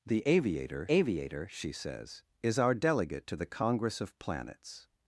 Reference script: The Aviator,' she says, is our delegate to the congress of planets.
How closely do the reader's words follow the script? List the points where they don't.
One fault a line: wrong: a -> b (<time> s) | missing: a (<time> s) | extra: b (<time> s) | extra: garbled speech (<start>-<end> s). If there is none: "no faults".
extra: Aviator (0.9 s)